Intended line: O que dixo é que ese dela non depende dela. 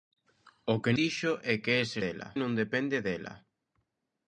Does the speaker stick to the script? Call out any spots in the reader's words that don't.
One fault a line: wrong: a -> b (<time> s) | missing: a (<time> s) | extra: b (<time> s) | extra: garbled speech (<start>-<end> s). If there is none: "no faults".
no faults